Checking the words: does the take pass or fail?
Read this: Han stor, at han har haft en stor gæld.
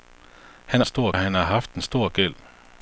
pass